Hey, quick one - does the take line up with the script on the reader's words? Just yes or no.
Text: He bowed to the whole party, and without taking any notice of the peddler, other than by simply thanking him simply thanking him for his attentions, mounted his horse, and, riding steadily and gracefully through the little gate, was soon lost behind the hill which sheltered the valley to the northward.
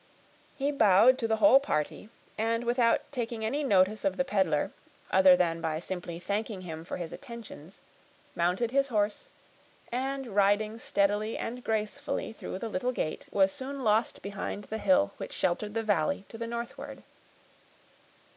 no